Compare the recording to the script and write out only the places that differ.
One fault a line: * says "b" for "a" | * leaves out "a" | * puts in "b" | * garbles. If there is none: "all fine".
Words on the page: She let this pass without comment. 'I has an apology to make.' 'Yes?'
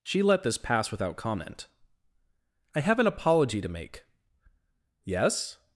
* says "have" for "has"